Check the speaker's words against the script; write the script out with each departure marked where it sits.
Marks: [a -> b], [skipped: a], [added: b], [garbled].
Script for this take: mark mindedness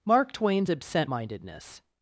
mark [added: twain's absent] mindedness